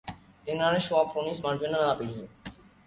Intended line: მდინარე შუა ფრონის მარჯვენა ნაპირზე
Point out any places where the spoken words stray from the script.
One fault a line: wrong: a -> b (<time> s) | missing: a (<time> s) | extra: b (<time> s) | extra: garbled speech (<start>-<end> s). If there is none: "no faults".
no faults